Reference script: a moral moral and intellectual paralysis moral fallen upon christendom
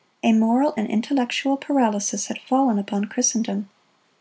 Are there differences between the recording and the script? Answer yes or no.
yes